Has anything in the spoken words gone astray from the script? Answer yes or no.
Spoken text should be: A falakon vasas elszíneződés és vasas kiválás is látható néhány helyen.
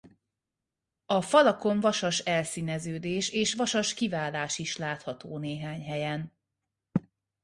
no